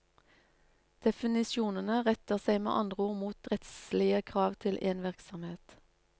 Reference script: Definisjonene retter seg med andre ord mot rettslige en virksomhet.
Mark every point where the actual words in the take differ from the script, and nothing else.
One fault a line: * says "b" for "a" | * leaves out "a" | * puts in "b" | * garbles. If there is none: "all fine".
* puts in "krav til"